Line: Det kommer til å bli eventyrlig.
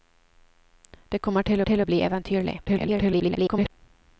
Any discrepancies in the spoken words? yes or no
yes